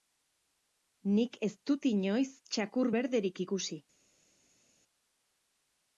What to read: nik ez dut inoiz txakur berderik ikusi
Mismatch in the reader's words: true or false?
false